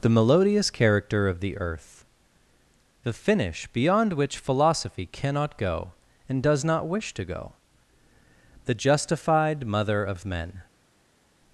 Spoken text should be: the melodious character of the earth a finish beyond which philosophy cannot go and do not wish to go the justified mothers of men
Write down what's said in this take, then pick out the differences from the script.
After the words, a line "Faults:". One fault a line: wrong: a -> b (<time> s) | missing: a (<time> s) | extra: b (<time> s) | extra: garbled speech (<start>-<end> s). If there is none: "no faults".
the melodious character of the earth the finish beyond which philosophy cannot go and does not wish to go the justified mother of men
Faults:
wrong: a -> the (3.0 s)
wrong: do -> does (6.4 s)
wrong: mothers -> mother (9.7 s)